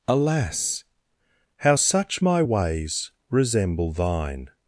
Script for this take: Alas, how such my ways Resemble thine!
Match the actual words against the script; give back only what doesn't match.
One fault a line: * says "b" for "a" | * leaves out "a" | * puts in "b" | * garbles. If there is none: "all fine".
all fine